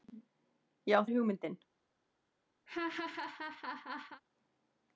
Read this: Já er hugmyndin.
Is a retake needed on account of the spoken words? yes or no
no